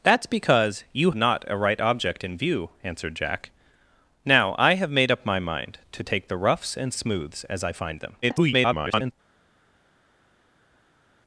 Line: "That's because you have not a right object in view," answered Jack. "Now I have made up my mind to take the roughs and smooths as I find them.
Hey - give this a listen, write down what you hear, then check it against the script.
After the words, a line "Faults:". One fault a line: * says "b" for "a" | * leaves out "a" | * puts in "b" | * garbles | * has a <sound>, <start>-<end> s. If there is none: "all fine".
"That's because you not a right object in view," answered Jack. "Now I have made up my mind to take the roughs and smooths as I find them. [garbled]
Faults:
* leaves out "have"
* garbles